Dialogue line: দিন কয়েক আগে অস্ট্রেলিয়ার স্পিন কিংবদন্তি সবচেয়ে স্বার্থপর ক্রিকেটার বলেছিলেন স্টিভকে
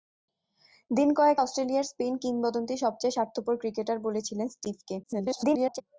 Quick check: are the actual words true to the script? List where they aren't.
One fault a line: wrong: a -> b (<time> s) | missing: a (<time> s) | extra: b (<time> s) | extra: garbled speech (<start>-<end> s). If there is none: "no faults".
missing: আগে (1.4 s)
extra: garbled speech (5.0-5.8 s)